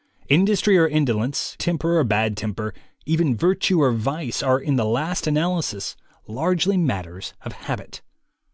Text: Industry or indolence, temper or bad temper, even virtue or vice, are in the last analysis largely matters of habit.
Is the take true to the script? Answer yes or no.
yes